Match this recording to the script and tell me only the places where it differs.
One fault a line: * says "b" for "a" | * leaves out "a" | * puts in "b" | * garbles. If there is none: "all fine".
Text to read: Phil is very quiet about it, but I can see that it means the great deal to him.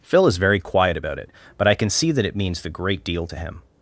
all fine